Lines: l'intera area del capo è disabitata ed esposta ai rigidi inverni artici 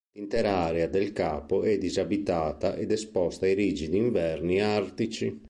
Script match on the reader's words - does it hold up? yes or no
yes